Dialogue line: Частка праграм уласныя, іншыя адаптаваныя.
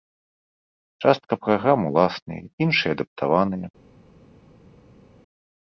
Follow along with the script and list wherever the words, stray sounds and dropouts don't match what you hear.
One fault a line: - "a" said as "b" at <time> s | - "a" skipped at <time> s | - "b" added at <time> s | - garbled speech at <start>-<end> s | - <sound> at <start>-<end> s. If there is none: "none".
none